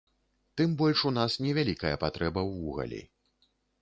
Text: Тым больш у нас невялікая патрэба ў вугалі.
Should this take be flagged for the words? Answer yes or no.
no